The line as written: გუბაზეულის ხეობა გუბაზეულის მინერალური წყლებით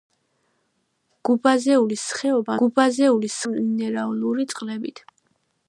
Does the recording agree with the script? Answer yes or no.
yes